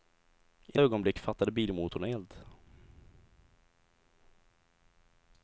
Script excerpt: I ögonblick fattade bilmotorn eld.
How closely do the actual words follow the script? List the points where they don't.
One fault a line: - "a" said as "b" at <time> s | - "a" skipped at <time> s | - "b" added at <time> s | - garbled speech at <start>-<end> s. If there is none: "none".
none